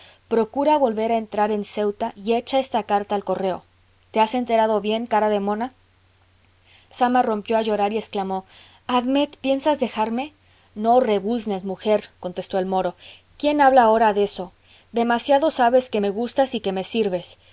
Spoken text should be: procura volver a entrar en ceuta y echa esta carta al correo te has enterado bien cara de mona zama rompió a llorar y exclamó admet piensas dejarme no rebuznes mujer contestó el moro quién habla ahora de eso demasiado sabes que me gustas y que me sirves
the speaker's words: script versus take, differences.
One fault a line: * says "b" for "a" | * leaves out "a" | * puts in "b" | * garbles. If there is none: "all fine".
all fine